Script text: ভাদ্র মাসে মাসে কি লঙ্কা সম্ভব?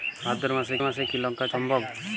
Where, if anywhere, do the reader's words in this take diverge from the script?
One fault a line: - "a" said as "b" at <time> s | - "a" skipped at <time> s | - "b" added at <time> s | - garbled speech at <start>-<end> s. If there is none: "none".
none